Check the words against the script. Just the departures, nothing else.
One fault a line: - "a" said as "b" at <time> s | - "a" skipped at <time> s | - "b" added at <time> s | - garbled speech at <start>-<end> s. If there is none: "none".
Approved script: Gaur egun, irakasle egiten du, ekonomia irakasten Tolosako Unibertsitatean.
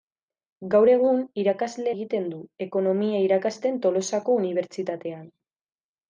none